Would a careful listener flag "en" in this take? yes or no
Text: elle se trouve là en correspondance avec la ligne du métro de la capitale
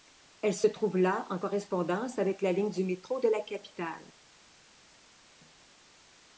no